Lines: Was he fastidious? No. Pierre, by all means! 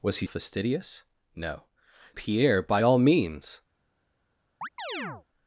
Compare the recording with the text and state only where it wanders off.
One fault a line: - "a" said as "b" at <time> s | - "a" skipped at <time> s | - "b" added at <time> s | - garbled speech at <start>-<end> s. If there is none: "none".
none